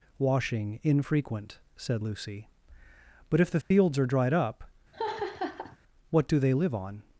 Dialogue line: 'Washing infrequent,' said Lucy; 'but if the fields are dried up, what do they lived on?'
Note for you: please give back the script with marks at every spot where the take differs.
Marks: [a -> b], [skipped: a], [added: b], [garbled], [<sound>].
'Washing infrequent,' said Lucy; 'but if the fields [dropout] are dried up, [laugh] what do they [lived -> live] on?'